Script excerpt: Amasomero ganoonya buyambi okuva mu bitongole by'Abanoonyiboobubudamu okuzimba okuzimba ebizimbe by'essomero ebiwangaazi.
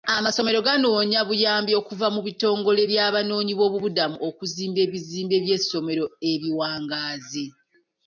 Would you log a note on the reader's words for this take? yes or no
yes